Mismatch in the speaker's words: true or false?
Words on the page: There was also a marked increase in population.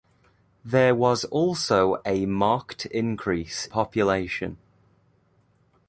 true